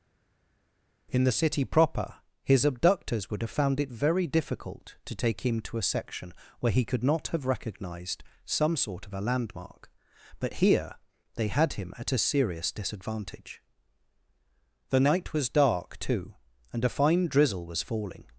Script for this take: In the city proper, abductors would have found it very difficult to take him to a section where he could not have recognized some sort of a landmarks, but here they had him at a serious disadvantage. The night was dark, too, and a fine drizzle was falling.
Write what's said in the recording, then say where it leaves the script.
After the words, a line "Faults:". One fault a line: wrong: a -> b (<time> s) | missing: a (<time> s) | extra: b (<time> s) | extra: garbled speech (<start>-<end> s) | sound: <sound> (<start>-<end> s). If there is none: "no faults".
In the city proper, his abductors would have found it very difficult to take him to a section where he could not have recognized some sort of a landmark, but here they had him at a serious disadvantage. The night was dark, too, and a fine drizzle was falling.
Faults:
extra: his (2.4 s)
wrong: landmarks -> landmark (9.2 s)